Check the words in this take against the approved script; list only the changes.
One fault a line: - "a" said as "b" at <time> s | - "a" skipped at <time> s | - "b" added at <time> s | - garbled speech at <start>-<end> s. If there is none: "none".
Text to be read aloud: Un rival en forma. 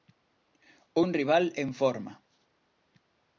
none